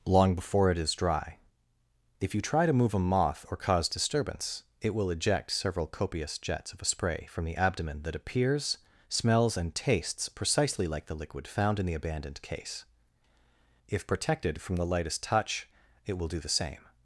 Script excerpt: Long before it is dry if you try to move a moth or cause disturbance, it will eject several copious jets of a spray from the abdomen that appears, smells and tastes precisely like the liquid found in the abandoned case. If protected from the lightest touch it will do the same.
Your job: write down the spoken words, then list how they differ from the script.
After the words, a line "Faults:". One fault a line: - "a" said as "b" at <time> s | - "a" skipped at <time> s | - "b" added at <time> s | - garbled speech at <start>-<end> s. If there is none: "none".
Long before it is dry if you try to move a moth or cause disturbance, it will eject several copious jets of a spray from the abdomen that appears, smells and tastes precisely like the liquid found in the abandoned case. If protected from the lightest touch it will do the same.
Faults:
none